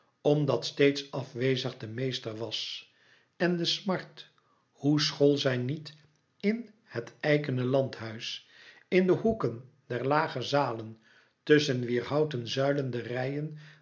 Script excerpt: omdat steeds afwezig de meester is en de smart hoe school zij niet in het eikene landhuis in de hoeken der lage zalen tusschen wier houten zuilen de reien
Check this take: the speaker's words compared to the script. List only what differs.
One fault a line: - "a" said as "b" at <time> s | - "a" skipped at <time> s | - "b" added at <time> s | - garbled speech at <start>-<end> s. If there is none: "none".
- "is" said as "was" at 2.4 s